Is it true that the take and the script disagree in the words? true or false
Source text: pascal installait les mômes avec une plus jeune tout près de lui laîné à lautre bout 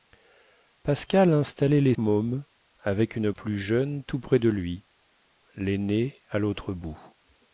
false